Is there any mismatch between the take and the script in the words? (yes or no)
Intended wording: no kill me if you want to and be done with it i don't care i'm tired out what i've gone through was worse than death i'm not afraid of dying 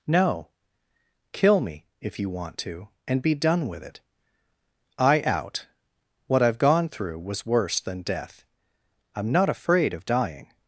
yes